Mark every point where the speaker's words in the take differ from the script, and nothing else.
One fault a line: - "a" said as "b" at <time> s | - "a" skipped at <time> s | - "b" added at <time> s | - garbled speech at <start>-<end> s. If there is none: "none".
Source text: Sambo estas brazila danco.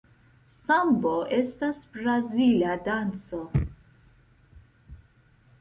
none